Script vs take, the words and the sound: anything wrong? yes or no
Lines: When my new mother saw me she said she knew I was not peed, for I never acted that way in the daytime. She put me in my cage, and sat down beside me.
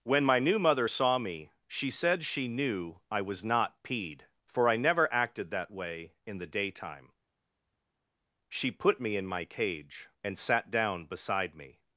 no